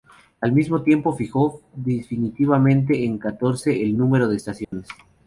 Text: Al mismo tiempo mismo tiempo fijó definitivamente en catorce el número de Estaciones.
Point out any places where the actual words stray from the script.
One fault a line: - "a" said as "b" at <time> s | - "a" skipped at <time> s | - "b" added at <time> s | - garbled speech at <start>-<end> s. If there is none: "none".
- "mismo tiempo" skipped at 1.1 s